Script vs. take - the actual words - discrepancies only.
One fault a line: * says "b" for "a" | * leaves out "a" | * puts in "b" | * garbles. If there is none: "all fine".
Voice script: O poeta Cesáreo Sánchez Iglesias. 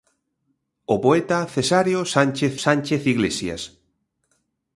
* puts in "Sánchez"